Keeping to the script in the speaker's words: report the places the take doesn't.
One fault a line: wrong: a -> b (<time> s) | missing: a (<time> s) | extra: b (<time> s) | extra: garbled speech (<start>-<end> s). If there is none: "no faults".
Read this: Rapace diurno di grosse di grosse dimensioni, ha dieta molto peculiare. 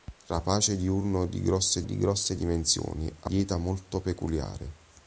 no faults